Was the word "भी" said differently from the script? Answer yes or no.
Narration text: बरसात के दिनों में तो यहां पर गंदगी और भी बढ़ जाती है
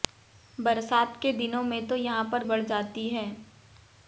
yes